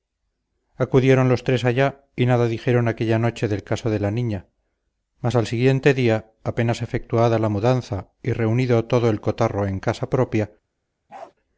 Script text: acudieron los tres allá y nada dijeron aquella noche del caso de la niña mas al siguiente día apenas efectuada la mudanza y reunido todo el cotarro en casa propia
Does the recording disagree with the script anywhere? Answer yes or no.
no